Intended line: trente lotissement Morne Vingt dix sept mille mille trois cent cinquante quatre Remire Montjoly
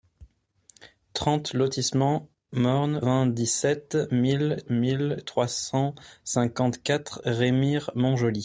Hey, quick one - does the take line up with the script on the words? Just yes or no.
yes